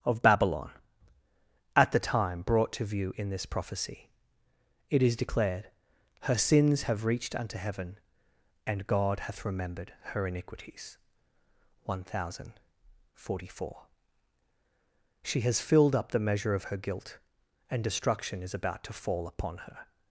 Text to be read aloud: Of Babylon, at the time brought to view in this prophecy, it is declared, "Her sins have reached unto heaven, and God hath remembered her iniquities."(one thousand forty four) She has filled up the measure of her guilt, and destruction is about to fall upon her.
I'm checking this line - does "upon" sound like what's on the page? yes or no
yes